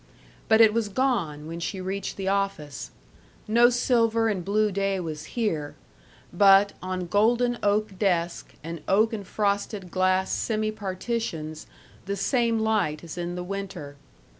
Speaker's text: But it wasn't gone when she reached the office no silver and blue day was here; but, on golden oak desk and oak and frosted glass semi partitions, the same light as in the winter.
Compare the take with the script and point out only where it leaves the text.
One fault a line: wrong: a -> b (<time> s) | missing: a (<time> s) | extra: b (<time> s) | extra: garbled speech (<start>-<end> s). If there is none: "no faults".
wrong: wasn't -> was (0.7 s)